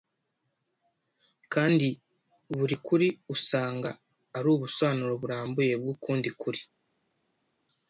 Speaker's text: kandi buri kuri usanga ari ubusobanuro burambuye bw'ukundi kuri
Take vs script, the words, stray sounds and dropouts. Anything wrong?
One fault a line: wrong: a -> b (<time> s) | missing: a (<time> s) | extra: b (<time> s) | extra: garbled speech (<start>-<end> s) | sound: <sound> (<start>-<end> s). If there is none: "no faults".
no faults